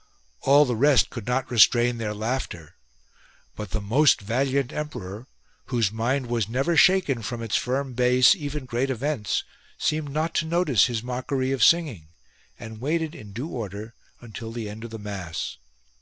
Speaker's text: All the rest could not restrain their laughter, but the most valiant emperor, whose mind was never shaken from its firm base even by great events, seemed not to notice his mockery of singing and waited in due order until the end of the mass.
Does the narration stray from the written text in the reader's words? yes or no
yes